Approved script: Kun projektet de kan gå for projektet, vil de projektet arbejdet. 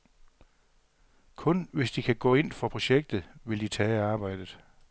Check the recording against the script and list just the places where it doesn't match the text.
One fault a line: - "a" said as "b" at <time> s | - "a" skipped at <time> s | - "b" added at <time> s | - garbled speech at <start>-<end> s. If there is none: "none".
- "projektet" said as "hvis" at 1.7 s
- "ind" added at 2.3 s
- "projektet" said as "tage" at 3.7 s